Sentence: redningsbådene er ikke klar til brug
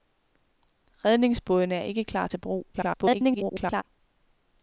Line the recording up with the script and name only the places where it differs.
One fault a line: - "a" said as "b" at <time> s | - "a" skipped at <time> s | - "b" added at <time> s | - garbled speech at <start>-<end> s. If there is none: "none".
- garbled speech at 2.7-3.8 s